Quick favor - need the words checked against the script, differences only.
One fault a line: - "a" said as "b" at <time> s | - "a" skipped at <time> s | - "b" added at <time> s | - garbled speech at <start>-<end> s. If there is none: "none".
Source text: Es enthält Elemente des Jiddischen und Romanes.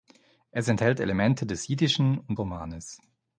none